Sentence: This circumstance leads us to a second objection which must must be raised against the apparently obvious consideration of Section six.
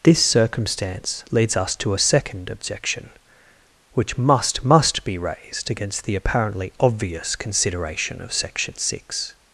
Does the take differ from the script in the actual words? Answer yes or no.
no